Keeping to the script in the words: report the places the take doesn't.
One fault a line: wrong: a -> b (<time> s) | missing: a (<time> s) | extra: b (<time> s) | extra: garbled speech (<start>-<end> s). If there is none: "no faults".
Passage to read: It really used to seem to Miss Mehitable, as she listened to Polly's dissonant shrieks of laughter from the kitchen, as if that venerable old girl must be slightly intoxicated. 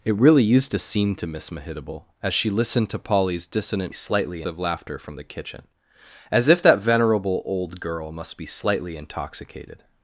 wrong: shrieks -> slightly (3.9 s)